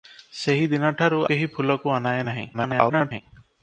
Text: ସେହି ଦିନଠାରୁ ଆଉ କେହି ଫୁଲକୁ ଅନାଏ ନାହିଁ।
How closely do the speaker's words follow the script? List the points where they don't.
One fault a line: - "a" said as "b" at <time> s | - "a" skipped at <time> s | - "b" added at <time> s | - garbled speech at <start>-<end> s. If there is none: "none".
- "ଆଉ" skipped at 1.2 s
- garbled speech at 2.5-3.2 s